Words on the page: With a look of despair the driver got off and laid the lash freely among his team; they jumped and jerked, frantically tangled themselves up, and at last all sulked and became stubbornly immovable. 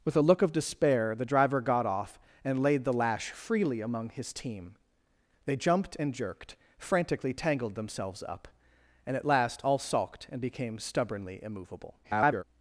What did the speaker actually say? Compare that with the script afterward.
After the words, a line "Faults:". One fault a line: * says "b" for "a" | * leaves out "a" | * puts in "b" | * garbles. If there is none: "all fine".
With a look of despair the driver got off and laid the lash freely among his team; they jumped and jerked, frantically tangled themselves up, and at last all sulked and became stubbornly immovable. [garbled]
Faults:
* garbles